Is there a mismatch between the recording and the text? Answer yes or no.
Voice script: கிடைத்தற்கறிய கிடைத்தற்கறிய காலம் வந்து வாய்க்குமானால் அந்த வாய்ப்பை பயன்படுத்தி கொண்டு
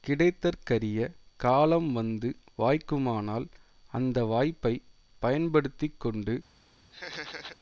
yes